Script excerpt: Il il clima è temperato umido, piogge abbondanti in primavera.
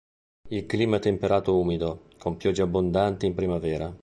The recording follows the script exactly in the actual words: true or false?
false